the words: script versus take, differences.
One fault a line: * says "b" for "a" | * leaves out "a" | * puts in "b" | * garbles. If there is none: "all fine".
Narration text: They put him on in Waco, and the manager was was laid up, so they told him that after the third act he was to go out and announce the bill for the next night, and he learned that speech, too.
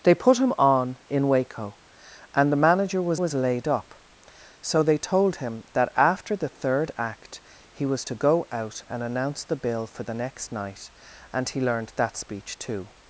all fine